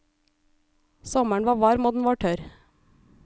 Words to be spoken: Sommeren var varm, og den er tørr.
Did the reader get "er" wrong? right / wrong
wrong